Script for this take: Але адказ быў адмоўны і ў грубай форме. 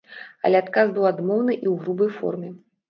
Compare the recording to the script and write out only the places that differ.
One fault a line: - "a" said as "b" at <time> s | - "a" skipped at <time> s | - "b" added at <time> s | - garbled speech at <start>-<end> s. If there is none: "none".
none